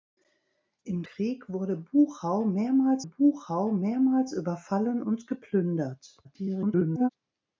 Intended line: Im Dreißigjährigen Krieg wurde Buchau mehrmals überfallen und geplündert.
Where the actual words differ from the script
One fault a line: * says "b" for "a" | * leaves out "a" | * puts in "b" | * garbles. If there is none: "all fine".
* leaves out "Dreißigjährigen"
* puts in "Buchau mehrmals"
* garbles